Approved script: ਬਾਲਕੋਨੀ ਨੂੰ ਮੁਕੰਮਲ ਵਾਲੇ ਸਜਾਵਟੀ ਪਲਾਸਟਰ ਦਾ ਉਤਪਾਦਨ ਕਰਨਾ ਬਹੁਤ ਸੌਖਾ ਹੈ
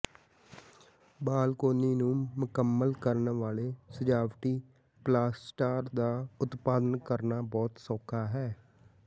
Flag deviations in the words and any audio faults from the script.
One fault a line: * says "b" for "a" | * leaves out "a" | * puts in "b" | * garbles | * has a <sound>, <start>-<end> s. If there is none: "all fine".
* puts in "ਕਰਨ"